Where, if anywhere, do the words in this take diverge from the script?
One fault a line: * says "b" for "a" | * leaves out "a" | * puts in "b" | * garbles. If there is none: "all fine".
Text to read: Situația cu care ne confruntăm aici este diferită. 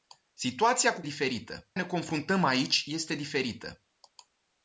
* says "diferită" for "care"